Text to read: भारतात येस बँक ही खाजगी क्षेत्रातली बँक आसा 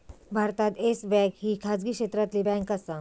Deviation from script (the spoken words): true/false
false